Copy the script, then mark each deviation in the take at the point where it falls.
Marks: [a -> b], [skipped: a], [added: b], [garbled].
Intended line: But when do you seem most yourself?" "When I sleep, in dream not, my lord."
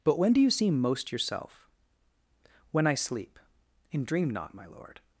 But when do you seem most yourself?" "When I sleep, in dream not, my lord."